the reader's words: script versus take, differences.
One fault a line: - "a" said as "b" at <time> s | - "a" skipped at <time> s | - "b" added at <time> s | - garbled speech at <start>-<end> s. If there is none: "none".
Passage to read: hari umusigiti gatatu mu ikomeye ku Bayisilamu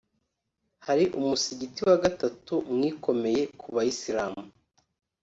- "wa" added at 1.9 s